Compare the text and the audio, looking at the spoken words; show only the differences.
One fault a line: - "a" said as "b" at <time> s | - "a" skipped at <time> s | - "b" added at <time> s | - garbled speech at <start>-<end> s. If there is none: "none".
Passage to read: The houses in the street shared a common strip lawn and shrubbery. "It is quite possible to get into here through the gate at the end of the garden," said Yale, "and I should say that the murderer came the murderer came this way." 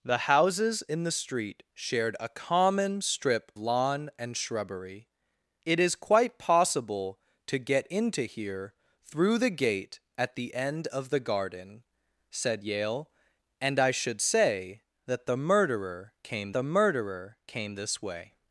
none